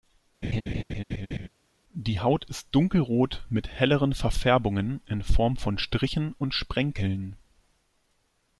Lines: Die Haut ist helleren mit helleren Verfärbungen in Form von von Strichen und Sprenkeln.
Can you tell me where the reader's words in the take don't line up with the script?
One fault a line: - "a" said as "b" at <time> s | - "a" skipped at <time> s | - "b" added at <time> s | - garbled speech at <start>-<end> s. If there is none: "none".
- "helleren" said as "dunkelrot" at 2.7 s
- "von" skipped at 5.8 s